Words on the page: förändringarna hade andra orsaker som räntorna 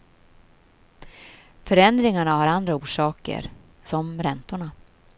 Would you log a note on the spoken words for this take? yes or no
yes